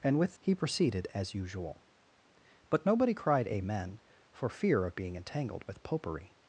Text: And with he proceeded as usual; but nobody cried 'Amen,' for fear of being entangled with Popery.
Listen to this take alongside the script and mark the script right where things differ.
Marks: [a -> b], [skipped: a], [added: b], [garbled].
And with he proceeded as usual; but nobody cried 'Amen,' for fear of being entangled with Popery.